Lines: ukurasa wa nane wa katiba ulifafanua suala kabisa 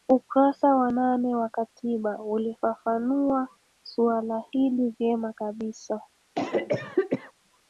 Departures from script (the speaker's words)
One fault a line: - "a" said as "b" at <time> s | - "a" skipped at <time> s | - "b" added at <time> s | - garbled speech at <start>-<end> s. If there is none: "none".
- "hili vyema" added at 4.5 s